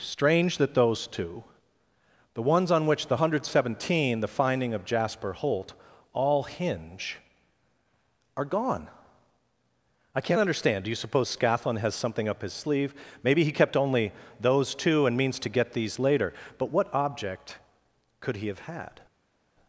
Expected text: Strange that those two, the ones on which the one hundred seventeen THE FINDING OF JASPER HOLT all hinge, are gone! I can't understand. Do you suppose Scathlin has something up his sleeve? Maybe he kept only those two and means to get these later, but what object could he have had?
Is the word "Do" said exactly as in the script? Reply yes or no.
yes